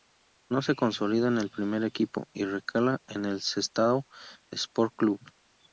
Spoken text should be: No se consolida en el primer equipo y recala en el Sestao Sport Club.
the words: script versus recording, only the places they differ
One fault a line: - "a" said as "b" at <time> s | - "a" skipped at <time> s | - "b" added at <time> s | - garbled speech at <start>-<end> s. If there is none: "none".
none